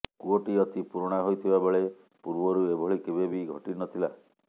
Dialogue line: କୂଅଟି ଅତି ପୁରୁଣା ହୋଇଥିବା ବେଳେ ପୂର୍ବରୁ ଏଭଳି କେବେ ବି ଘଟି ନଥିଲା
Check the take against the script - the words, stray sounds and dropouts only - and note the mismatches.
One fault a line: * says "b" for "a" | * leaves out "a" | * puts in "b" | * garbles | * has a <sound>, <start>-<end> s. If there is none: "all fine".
all fine